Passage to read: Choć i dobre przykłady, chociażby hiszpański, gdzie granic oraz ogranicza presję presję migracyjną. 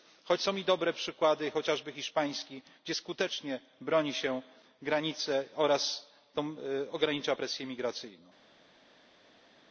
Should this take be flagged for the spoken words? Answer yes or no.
yes